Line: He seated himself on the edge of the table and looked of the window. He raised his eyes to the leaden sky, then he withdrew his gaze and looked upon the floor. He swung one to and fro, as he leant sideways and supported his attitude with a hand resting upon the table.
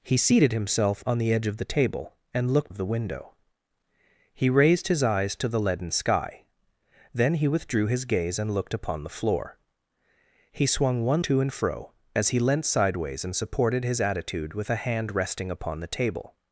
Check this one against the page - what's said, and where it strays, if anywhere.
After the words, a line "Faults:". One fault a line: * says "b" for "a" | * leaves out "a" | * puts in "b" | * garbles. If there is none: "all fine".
He seated himself on the edge of the table and looked of the window. He raised his eyes to the leaden sky, then he withdrew his gaze and looked upon the floor. He swung one to and fro, as he leant sideways and supported his attitude with a hand resting upon the table.
Faults:
all fine